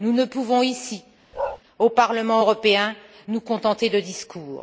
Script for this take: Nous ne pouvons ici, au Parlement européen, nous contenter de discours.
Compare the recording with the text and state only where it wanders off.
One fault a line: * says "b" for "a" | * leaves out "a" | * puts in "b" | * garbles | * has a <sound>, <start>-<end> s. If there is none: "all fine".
* has a bark, 1.3-1.6 s